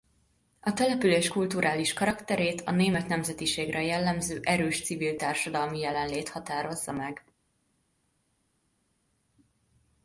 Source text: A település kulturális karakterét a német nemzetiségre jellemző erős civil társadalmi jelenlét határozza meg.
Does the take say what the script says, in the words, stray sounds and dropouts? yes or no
yes